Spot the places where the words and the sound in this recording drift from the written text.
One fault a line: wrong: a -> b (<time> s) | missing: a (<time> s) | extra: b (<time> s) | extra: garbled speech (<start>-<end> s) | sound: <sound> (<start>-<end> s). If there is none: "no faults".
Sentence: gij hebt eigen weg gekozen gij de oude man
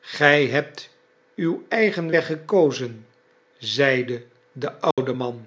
extra: uw (1.4 s)
wrong: gij -> zeide (3.6 s)
sound: dropout (4.9-5.0 s)